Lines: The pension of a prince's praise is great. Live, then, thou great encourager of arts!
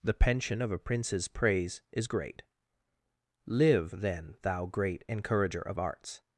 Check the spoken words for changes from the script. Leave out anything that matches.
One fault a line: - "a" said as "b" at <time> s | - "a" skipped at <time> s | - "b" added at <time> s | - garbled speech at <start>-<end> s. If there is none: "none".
none